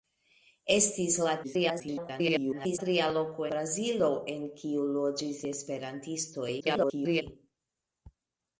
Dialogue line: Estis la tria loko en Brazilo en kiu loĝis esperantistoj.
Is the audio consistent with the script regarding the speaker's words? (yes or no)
no